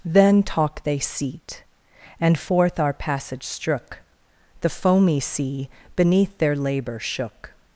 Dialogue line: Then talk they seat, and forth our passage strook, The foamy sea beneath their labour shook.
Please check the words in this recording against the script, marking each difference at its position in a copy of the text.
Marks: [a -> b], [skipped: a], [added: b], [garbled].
Then talk they seat, and forth our passage strook, The foamy sea beneath their labour shook.